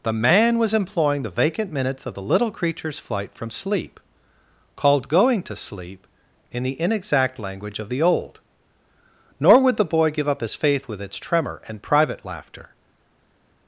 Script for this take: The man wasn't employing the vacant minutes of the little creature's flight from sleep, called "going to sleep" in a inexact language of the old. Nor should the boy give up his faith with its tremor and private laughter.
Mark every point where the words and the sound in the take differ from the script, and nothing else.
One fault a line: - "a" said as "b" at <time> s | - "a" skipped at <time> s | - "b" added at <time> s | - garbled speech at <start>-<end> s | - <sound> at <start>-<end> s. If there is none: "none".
- "wasn't" said as "was" at 0.6 s
- "a" said as "the" at 6.6 s
- "should" said as "would" at 9.6 s